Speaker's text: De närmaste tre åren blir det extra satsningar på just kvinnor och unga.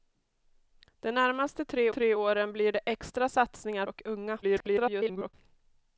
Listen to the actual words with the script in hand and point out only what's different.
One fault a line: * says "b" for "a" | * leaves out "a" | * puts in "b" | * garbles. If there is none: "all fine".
* puts in "tre"
* leaves out "på just kvinnor"
* garbles